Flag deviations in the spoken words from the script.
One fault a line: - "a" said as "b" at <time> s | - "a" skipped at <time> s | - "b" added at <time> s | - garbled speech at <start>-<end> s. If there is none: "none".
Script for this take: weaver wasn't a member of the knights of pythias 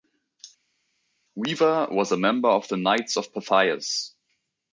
- "wasn't" said as "was" at 1.9 s